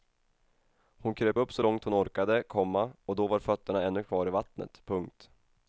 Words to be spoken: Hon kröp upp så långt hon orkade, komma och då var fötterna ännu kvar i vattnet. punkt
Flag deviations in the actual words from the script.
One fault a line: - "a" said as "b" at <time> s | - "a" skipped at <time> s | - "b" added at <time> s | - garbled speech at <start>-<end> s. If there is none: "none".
none